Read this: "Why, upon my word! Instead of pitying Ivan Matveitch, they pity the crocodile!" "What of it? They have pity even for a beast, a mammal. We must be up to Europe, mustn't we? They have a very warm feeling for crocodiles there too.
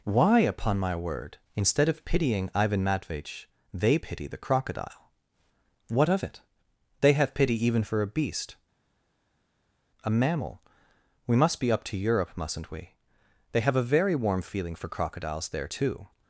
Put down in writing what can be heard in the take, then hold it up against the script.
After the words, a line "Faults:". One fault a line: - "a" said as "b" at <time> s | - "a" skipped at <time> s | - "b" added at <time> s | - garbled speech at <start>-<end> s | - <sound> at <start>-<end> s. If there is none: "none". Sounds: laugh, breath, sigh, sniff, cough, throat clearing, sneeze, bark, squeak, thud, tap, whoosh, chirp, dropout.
"Why, upon my word! Instead of pitying Ivan Matveitch, they pity the crocodile!" "What of it? They have pity even for a beast, a mammal. We must be up to Europe, mustn't we? They have a very warm feeling for crocodiles there too.
Faults:
none